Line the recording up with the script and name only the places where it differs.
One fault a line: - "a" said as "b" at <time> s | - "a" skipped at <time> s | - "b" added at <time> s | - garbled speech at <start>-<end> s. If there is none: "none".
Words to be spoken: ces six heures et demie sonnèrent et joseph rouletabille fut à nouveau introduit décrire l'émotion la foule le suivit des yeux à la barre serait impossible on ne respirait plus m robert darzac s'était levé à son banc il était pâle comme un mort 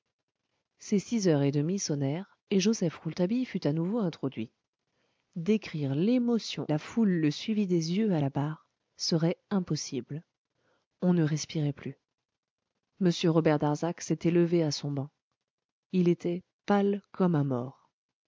none